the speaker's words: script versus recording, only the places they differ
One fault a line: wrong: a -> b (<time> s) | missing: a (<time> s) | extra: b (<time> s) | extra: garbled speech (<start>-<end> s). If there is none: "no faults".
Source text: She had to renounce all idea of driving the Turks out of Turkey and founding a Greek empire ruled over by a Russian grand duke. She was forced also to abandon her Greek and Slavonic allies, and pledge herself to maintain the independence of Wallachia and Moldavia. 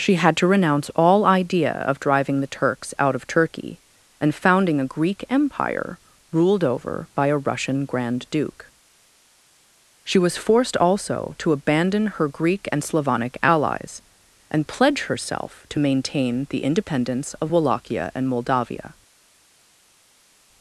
no faults